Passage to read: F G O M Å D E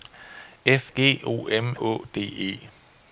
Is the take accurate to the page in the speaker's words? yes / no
yes